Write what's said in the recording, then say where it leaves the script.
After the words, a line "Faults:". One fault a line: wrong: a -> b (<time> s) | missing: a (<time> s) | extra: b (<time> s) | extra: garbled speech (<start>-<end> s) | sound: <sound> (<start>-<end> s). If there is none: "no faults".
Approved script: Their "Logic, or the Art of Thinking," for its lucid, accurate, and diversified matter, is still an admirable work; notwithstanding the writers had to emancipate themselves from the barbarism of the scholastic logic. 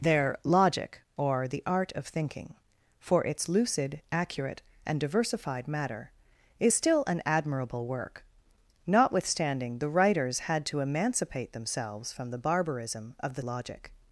Their "Logic, or the Art of Thinking," for its lucid, accurate, and diversified matter, is still an admirable work; notwithstanding the writers had to emancipate themselves from the barbarism of the logic.
Faults:
missing: scholastic (13.4 s)